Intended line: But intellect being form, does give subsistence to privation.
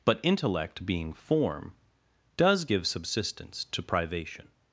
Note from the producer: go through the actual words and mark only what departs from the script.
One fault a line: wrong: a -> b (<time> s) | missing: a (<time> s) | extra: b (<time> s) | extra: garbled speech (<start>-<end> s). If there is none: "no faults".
no faults